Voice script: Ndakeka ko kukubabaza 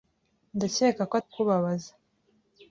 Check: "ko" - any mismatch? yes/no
no